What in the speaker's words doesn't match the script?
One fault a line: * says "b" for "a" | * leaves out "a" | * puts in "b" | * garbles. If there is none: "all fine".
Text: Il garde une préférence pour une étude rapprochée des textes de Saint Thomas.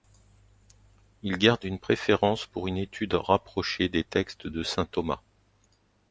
all fine